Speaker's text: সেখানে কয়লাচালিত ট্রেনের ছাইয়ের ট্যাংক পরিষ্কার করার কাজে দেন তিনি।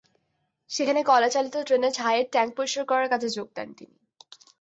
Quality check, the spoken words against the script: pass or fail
fail